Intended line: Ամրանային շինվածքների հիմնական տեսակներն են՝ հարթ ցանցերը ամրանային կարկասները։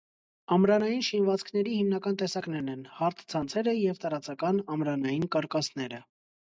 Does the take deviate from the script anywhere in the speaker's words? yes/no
yes